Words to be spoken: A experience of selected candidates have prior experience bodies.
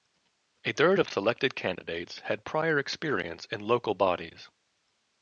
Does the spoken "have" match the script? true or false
false